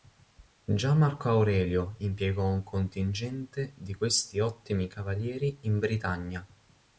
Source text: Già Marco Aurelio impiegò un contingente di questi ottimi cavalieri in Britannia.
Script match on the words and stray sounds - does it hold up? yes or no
yes